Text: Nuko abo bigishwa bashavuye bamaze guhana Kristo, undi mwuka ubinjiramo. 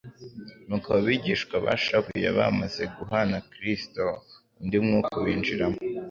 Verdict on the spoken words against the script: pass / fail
pass